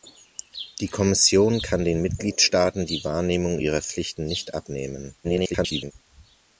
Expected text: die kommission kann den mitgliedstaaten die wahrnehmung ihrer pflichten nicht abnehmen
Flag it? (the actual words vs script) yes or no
yes